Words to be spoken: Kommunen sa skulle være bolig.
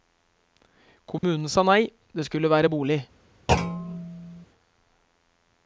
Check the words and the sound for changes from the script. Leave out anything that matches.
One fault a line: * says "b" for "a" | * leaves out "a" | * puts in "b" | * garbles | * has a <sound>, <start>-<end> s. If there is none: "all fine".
* has a dropout, 1.2-1.2 s
* puts in "nei det"
* has a thud, 3.5-4.5 s